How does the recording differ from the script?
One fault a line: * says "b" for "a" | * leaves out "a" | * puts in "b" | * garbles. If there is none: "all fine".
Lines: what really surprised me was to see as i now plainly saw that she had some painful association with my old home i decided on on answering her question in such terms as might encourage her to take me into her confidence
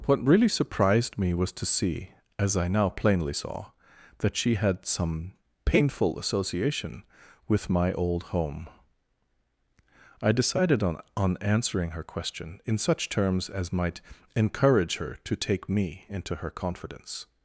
all fine